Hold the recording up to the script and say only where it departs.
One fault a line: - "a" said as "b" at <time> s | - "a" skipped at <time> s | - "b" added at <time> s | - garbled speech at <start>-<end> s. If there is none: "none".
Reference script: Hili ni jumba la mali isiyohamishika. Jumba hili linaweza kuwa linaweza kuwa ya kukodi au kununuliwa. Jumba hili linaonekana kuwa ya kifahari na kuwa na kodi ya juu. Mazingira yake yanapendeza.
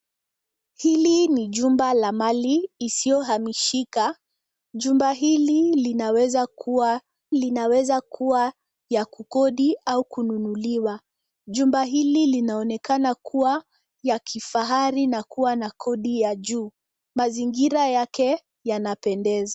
none